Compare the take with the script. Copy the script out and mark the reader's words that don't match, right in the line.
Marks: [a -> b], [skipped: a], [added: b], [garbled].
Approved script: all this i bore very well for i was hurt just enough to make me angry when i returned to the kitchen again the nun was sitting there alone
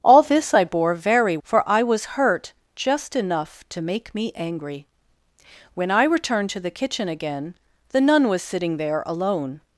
all this i bore very [skipped: well] for i was hurt just enough to make me angry when i returned to the kitchen again the nun was sitting there alone